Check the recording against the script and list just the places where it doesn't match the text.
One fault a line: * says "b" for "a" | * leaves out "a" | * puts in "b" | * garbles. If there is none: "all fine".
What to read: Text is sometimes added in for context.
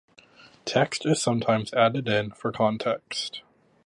all fine